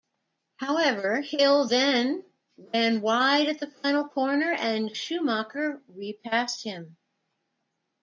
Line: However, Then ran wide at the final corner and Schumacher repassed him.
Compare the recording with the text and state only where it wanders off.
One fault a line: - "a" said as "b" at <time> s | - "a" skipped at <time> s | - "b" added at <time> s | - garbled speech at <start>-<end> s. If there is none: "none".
- "Hill" added at 1.2 s